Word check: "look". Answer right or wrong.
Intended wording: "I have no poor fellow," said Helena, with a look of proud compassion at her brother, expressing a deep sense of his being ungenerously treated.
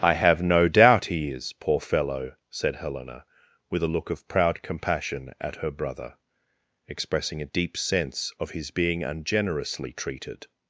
right